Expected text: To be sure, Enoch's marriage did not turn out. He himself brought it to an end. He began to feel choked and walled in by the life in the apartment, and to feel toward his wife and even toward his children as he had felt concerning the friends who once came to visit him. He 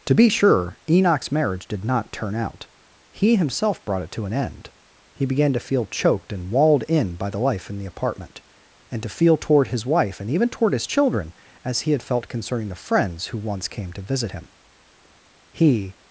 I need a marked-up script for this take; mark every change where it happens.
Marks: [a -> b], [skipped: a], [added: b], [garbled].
To be sure, Enoch's marriage did not turn out. He himself brought it to an end. He began to feel choked and walled in by the life in the apartment, and to feel toward his wife and even toward his children as he had felt concerning the friends who once came to visit him. He